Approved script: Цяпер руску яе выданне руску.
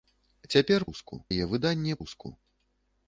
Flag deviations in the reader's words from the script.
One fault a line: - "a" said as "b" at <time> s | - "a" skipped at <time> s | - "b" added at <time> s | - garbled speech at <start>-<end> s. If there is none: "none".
none